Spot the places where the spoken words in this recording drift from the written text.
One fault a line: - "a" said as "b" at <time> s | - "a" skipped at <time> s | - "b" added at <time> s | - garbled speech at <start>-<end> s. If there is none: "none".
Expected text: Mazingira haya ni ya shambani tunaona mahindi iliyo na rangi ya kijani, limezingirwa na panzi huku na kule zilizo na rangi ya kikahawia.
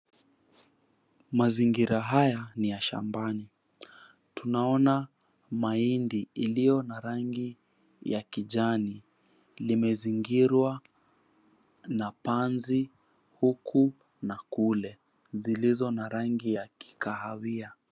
none